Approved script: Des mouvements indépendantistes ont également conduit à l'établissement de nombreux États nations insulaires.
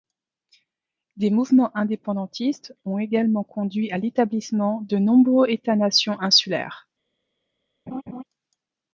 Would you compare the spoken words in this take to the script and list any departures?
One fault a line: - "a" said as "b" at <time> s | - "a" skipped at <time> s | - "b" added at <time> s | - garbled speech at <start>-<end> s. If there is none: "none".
none